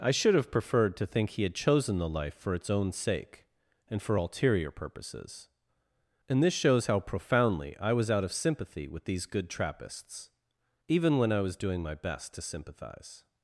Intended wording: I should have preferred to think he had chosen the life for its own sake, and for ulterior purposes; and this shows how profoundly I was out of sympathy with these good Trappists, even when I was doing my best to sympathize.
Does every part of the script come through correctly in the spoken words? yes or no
yes